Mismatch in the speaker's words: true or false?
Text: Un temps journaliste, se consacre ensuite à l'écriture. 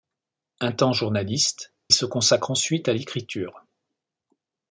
false